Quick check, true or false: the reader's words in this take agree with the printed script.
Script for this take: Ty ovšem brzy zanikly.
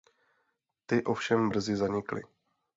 true